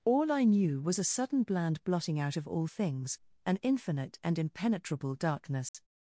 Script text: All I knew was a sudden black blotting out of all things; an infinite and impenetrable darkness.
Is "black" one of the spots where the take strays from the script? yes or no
yes